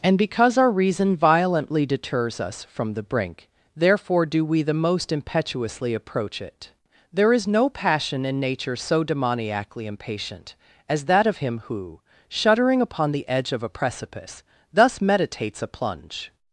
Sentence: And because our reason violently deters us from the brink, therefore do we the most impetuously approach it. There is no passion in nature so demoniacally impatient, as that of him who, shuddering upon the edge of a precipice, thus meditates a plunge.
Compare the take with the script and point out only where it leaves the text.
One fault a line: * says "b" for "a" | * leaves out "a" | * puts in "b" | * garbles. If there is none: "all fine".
all fine